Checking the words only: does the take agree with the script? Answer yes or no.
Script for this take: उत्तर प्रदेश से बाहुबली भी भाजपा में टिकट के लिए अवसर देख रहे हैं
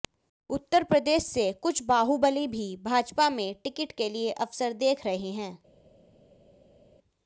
no